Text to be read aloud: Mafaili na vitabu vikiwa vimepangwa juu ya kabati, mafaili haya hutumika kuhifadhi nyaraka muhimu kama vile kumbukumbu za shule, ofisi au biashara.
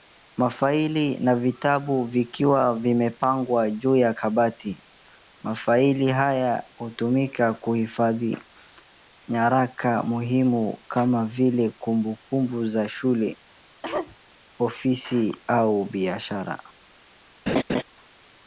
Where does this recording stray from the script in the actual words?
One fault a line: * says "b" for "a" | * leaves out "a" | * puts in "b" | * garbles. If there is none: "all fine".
all fine